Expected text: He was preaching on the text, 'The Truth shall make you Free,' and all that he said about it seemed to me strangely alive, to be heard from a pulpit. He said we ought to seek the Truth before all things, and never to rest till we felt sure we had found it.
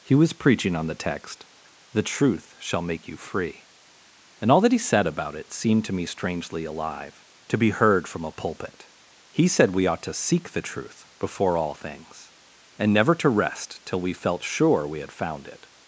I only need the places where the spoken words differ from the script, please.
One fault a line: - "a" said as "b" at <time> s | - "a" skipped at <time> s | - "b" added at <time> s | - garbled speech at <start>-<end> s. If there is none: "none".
none